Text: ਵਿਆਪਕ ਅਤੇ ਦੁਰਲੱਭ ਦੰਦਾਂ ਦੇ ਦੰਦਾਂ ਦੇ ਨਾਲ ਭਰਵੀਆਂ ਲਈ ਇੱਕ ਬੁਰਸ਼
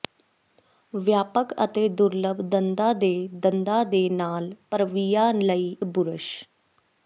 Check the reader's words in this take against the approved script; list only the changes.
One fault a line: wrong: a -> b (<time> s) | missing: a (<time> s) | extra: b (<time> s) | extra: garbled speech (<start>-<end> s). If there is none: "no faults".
missing: ਇੱਕ (5.7 s)